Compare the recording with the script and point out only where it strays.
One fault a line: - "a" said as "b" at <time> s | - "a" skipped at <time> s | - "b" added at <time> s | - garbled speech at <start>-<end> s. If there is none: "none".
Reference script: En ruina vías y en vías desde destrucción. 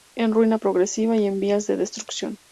- "vías" said as "progresiva" at 0.5 s
- "desde" said as "de" at 1.7 s